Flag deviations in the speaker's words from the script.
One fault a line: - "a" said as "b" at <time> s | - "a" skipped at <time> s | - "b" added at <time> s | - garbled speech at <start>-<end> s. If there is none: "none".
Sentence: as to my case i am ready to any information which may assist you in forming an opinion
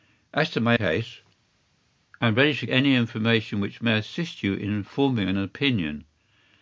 none